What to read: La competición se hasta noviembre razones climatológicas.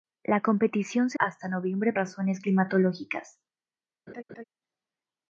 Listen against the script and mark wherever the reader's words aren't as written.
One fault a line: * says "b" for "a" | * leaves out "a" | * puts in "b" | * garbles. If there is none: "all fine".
all fine